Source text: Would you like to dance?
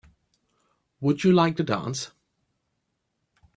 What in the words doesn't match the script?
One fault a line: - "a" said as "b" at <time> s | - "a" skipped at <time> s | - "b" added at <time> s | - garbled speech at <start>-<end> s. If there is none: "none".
none